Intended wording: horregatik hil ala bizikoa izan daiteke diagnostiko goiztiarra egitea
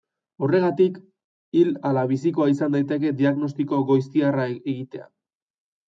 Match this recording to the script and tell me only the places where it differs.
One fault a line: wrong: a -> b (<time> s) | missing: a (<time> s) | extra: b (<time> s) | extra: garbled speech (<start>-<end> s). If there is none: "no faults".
no faults